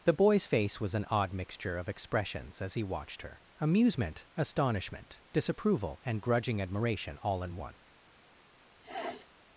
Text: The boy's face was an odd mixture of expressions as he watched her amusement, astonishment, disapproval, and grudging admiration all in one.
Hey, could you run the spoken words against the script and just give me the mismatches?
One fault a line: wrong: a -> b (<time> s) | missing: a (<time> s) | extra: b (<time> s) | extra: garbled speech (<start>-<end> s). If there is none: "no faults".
no faults